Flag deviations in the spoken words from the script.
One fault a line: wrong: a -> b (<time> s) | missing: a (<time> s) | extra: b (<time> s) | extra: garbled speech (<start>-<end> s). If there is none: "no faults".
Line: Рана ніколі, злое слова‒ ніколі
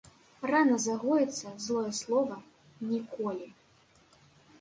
wrong: ніколі -> загоіцца (0.8 s)